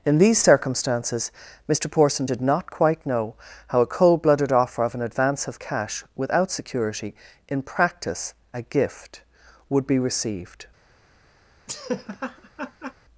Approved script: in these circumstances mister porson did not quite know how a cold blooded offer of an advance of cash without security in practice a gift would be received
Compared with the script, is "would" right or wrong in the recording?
right